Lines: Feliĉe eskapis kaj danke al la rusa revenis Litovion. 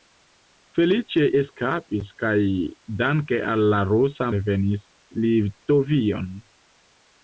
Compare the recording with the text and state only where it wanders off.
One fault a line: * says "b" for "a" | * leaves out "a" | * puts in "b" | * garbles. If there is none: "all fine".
all fine